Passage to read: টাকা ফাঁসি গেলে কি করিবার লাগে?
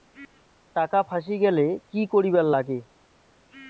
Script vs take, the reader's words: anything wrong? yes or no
no